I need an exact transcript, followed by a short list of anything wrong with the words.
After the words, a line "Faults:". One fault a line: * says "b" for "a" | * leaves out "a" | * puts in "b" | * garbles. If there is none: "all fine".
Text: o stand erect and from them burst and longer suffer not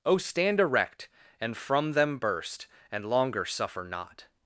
o stand erect and from them burst and longer suffer not
Faults:
all fine